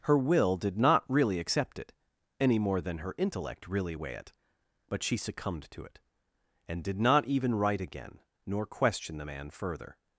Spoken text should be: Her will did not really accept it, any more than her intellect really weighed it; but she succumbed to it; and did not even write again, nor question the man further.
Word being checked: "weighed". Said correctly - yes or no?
no